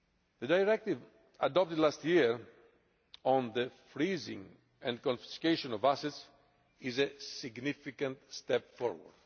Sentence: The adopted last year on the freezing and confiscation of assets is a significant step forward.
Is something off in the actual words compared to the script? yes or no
yes